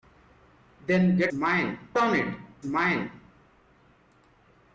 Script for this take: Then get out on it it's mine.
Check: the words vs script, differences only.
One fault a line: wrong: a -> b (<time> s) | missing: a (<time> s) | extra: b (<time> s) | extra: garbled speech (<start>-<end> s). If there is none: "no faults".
wrong: out -> mine (1.3 s)
missing: it's (2.5 s)